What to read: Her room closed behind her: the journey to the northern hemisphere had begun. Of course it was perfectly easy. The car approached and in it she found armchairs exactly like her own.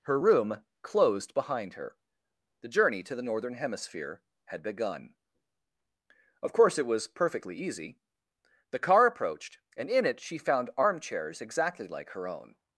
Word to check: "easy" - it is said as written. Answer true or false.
true